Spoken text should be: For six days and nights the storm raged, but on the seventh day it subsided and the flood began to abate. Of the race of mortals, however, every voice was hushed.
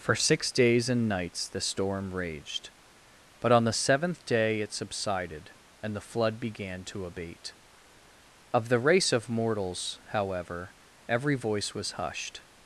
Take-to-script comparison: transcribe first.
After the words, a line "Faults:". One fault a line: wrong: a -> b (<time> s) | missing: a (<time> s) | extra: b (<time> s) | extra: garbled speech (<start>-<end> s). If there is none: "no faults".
For six days and nights the storm raged, but on the seventh day it subsided and the flood began to abate. Of the race of mortals, however, every voice was hushed.
Faults:
no faults